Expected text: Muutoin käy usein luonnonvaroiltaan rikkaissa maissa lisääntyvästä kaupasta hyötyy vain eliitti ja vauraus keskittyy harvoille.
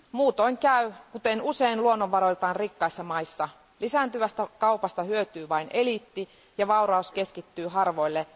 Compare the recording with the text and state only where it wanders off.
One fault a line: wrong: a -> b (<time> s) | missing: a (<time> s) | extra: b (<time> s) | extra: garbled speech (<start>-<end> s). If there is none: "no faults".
extra: kuten (1.1 s)